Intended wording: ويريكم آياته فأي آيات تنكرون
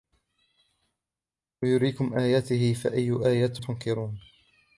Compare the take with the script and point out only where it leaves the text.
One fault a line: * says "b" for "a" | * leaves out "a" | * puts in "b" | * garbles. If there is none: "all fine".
all fine